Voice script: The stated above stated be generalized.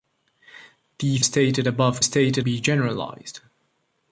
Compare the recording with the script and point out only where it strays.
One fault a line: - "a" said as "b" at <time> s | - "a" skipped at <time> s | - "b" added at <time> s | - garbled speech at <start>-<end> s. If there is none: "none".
none